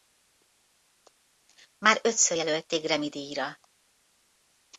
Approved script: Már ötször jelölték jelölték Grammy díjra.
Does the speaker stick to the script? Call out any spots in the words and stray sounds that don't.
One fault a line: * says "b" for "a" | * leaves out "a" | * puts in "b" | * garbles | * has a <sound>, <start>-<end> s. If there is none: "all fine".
* leaves out "jelölték"